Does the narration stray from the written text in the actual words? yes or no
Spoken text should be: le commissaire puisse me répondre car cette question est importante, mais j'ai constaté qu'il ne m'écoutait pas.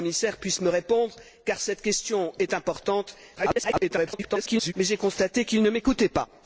yes